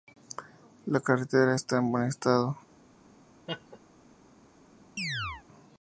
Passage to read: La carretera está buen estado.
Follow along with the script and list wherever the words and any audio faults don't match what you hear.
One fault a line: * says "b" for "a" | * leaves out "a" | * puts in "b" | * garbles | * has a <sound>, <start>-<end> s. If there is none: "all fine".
* puts in "en"
* has a laugh, 3.5-3.8 s
* has a chirp, 5.0-5.4 s